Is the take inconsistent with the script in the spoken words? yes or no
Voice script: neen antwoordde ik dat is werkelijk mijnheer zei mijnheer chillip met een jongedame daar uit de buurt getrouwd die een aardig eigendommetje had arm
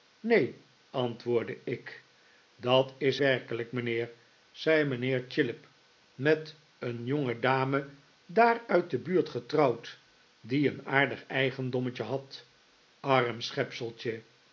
no